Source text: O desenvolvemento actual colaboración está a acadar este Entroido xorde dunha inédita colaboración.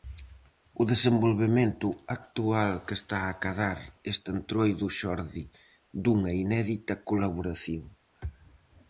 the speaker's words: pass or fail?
fail